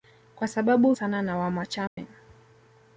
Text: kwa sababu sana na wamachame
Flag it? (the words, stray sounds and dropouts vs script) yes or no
yes